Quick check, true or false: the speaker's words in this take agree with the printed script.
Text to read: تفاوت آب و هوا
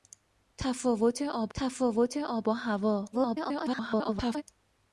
false